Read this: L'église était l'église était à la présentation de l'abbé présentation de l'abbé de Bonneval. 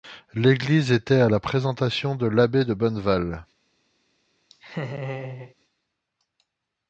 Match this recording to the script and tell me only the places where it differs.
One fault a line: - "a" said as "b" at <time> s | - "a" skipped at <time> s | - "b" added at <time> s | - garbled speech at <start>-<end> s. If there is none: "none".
- "l'église était" skipped at 1.2 s
- "présentation de l'abbé" skipped at 2.6 s